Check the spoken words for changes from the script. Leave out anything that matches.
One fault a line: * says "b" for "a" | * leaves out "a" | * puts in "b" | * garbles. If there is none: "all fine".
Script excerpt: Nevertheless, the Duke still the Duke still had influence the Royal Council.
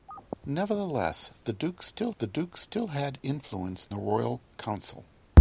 all fine